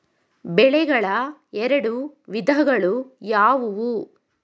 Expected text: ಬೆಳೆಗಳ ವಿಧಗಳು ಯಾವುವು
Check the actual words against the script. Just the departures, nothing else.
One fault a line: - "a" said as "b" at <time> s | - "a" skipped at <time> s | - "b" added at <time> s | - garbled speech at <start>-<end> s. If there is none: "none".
- "ಎರಡು" added at 1.5 s